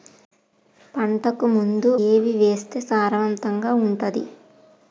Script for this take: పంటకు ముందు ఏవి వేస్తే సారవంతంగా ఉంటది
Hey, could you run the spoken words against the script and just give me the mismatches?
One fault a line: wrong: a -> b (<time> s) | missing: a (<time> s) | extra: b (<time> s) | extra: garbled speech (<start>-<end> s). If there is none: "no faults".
no faults